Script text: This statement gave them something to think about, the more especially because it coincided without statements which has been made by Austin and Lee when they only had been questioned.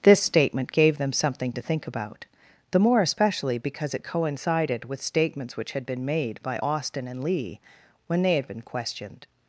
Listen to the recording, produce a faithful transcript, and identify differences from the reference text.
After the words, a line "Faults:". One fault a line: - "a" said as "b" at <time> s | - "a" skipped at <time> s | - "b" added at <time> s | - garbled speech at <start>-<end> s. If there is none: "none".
This statement gave them something to think about, the more especially because it coincided with statements which had been made by Austin and Lee when they had been questioned.
Faults:
- "without" said as "with" at 4.9 s
- "has" said as "had" at 5.7 s
- "only" skipped at 8.3 s